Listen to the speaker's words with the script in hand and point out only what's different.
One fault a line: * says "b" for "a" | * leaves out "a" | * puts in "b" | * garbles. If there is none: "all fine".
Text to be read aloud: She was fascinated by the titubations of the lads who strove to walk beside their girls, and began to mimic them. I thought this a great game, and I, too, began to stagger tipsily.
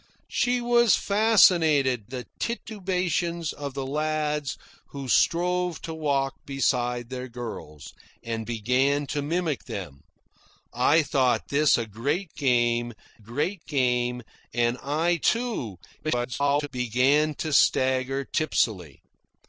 * leaves out "by"
* puts in "great game"
* garbles